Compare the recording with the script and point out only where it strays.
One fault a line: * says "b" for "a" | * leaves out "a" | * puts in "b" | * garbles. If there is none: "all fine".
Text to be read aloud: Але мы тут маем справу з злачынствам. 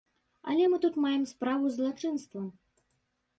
all fine